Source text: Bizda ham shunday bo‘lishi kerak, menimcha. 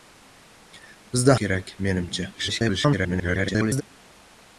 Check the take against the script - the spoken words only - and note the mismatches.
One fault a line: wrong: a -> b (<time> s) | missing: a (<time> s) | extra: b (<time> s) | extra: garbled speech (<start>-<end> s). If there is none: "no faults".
missing: ham shunday bo‘lishi (1.4 s)
extra: garbled speech (2.3-3.8 s)